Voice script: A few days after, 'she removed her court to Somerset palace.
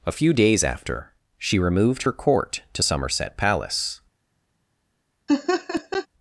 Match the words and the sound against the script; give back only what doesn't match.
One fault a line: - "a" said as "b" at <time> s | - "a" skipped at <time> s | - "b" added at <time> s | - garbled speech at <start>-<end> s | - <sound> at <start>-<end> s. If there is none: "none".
- laugh at 5.3-6.1 s